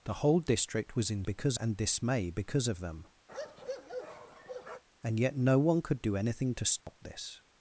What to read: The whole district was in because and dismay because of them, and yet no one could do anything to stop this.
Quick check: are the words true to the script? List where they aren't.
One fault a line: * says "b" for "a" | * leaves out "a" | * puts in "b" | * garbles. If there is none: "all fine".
all fine